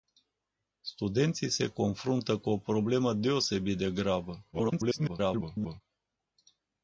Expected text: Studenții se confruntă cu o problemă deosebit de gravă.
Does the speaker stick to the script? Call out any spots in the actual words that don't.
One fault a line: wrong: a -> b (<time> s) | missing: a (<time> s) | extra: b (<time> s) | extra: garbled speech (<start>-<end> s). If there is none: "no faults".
extra: garbled speech (4.5-5.8 s)